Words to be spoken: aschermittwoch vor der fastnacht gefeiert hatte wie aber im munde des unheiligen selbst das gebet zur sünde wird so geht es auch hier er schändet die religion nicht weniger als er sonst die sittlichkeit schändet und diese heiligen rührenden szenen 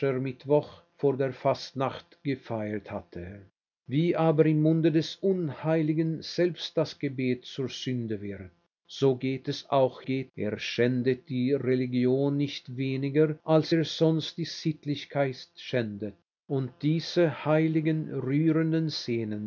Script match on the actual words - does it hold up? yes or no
no